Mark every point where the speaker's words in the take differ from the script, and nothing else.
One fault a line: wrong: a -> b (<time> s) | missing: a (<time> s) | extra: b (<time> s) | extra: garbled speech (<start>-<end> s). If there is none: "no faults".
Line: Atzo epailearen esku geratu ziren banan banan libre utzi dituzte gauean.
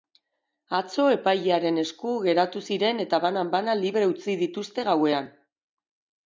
extra: eta (3.1 s)